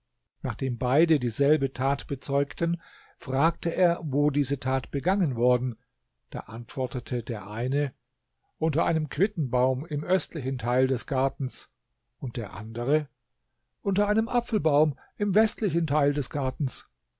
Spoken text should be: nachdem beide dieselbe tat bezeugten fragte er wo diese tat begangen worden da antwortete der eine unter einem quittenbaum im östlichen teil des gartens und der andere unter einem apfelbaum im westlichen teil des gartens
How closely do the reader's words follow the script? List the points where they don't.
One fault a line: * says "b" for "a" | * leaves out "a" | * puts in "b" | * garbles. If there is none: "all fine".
all fine